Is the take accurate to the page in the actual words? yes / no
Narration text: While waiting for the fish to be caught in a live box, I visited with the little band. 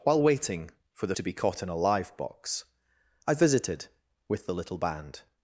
no